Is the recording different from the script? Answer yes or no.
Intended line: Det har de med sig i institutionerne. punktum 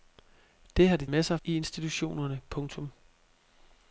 no